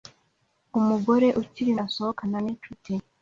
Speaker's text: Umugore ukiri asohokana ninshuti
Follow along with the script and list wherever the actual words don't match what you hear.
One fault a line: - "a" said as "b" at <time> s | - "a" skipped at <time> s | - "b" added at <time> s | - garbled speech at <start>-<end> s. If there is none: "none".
none